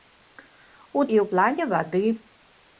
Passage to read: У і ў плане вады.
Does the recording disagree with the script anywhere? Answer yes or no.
no